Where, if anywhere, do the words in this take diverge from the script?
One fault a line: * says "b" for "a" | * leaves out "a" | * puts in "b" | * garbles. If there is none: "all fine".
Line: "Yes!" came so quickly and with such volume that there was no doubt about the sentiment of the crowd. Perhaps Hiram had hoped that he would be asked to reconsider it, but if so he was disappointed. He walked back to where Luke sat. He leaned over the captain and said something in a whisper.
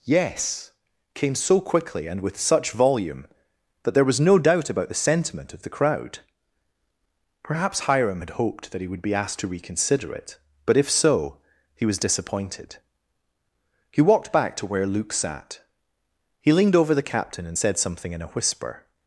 all fine